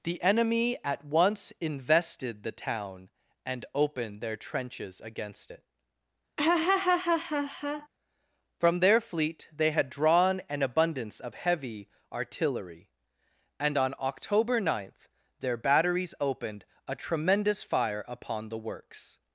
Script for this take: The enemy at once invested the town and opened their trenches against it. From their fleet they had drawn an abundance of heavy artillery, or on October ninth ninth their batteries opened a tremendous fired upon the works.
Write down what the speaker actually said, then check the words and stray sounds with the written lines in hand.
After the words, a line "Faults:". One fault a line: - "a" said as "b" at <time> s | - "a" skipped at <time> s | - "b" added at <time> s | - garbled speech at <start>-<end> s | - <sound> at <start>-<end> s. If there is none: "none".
The enemy at once invested the town and opened their trenches against it. From their fleet they had drawn an abundance of heavy artillery, and on October ninth their batteries opened a tremendous fire upon the works.
Faults:
- laugh at 6.4-7.9 s
- "or" said as "and" at 13.6 s
- "ninth" skipped at 15.1 s
- "fired" said as "fire" at 17.6 s